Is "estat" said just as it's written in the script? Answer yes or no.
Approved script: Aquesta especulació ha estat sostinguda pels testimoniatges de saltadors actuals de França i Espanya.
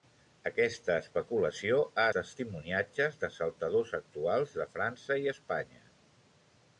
no